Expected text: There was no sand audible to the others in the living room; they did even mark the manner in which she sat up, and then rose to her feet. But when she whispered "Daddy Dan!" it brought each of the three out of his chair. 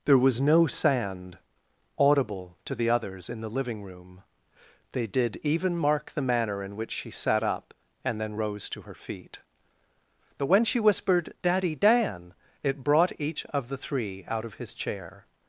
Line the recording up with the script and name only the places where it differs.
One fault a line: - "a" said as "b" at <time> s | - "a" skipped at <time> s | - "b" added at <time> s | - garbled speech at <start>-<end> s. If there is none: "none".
none